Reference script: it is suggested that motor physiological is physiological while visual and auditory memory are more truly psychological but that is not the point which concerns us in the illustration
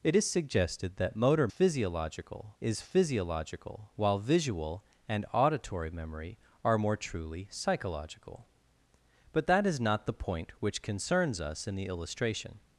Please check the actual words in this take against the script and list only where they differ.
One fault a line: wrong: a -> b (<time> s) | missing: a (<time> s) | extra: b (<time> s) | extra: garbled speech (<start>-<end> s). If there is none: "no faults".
no faults